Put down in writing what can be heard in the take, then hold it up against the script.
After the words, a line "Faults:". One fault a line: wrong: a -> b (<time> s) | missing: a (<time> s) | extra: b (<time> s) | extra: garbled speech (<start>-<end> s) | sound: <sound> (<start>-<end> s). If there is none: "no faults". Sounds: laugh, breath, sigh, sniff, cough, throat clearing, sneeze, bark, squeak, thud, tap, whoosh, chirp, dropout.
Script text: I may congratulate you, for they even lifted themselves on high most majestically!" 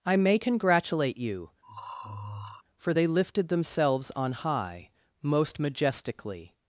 I may congratulate you, for they lifted themselves on high most majestically!"
Faults:
sound: throat clearing (1.6-2.6 s)
missing: even (3.1 s)